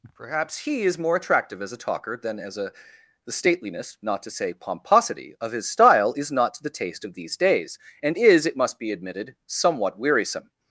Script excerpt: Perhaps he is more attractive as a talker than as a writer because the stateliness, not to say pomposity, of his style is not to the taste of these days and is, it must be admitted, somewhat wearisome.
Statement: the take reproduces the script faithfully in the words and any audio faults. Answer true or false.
false